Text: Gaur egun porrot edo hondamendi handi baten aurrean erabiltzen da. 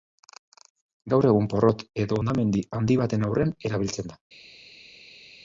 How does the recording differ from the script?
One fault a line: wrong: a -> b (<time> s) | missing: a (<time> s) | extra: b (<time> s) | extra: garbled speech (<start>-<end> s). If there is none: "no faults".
no faults